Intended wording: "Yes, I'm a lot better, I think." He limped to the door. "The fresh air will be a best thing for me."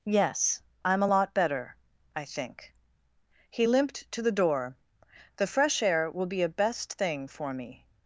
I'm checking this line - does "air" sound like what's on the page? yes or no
yes